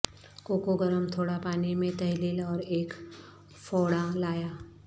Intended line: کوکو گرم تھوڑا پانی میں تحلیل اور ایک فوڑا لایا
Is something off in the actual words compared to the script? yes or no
no